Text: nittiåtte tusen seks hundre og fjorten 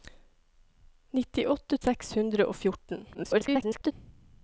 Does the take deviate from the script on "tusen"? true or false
true